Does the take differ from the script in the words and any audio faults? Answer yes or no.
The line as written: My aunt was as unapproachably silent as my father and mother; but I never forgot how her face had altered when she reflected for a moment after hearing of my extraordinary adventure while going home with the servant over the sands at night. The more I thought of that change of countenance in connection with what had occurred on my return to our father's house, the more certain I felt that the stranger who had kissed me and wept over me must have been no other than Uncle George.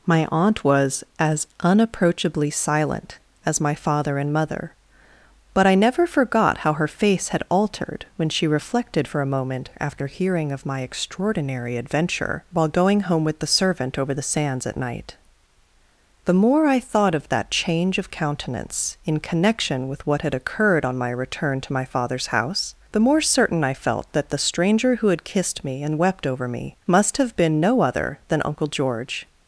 yes